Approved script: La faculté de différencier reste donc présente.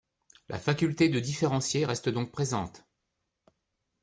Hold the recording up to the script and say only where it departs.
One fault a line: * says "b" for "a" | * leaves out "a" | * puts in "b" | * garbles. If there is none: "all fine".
all fine